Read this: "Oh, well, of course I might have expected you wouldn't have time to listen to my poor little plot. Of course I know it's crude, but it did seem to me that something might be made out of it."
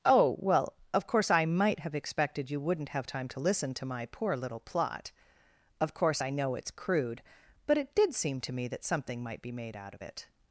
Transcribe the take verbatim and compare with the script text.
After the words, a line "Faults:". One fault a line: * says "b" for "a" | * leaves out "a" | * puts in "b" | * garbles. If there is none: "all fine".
"Oh, well, of course I might have expected you wouldn't have time to listen to my poor little plot. Of course I know it's crude, but it did seem to me that something might be made out of it."
Faults:
all fine